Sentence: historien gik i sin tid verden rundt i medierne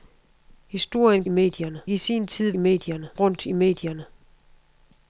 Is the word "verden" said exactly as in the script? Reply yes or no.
no